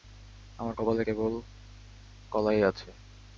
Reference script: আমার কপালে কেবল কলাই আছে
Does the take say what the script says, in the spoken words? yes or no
yes